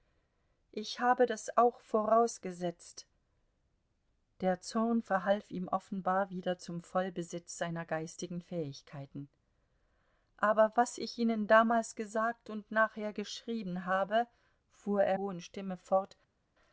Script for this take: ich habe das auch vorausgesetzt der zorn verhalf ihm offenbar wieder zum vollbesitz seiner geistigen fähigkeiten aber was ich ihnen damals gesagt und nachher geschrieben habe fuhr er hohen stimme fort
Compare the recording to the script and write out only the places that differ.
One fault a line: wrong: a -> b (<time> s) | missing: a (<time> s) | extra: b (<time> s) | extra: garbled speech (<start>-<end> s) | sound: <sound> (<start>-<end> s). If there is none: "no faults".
no faults